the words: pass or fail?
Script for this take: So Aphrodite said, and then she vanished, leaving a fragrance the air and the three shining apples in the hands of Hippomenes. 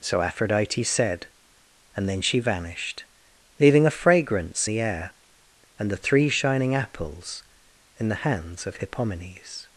pass